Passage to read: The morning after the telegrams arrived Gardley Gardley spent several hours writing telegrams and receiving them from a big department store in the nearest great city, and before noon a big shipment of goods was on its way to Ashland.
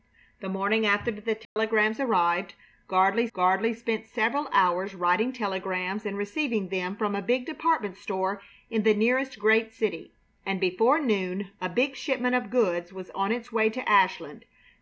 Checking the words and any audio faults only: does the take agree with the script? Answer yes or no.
no